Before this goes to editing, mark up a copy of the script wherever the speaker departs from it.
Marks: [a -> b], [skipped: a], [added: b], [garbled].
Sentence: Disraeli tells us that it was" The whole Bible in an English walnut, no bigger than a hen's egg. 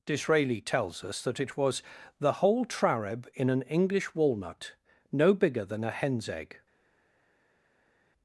Disraeli tells us that it was" The whole [Bible -> Trareb] in an English walnut, no bigger than a hen's egg.